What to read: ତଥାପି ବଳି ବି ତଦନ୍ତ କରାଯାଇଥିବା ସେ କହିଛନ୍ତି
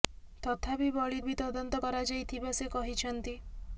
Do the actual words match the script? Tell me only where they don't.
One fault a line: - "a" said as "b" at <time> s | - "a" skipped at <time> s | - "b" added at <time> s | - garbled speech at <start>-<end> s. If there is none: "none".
none